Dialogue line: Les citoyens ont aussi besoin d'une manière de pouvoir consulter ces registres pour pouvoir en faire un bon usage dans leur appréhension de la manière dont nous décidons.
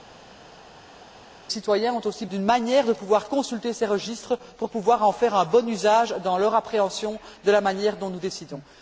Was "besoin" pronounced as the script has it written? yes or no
no